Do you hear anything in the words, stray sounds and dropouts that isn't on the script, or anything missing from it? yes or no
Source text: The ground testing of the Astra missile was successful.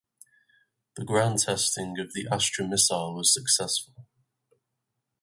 no